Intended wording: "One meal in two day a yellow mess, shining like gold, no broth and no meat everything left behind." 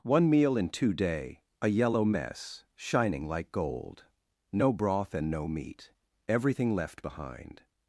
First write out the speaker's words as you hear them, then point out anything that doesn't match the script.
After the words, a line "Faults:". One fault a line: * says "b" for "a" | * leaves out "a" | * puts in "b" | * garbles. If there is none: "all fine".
"One meal in two day a yellow mess, shining like gold, no broth and no meat everything left behind."
Faults:
all fine